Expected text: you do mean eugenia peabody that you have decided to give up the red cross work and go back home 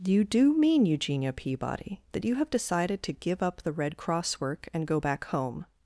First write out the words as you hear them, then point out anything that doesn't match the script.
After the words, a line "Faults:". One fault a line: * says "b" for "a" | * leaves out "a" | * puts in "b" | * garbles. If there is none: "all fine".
you do mean eugenia peabody that you have decided to give up the red cross work and go back home
Faults:
all fine